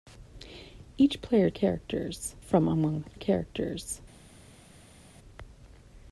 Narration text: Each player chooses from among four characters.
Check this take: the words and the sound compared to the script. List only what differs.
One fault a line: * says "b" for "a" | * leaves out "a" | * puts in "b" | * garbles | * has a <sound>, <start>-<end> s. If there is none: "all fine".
* says "characters" for "chooses"
* leaves out "four"